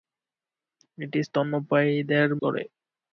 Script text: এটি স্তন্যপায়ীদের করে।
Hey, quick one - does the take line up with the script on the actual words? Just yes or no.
yes